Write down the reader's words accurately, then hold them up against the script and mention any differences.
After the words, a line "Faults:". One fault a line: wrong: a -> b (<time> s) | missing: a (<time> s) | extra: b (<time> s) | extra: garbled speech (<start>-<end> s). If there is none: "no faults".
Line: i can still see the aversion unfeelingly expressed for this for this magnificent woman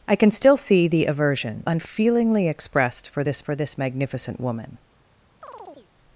i can still see the aversion unfeelingly expressed for this for this magnificent woman
Faults:
no faults